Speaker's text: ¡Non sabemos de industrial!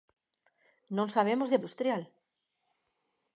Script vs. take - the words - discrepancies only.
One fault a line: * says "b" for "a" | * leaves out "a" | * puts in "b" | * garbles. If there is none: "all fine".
all fine